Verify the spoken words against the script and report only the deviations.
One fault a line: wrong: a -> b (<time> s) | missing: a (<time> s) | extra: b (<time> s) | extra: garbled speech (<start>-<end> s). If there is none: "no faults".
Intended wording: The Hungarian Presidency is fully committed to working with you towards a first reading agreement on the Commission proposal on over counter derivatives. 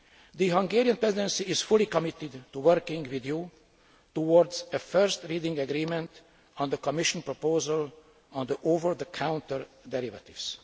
extra: the (8.9 s)